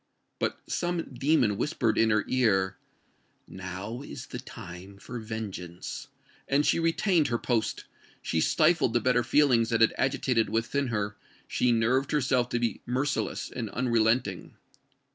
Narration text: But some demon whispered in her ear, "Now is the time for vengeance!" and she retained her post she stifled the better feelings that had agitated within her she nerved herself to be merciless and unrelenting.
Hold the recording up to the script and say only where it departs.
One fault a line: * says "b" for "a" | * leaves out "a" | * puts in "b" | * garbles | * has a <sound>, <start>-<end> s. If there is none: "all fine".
all fine